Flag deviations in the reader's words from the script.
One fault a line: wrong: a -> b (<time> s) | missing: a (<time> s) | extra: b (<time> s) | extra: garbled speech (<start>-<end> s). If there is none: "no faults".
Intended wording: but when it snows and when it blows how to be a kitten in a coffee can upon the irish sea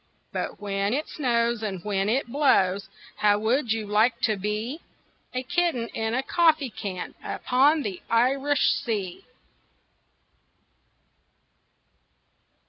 extra: would you like (3.4 s)